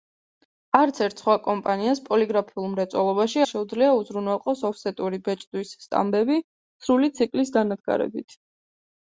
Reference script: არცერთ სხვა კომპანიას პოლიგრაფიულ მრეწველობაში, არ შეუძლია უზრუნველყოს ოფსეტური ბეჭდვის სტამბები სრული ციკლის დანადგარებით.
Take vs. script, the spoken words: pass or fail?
fail